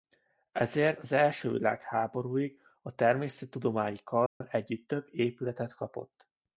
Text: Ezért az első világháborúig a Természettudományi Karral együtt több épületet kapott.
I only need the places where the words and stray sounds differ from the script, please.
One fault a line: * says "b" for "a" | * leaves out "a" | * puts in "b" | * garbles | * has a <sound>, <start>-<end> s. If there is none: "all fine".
* has a dropout, 4.3-4.4 s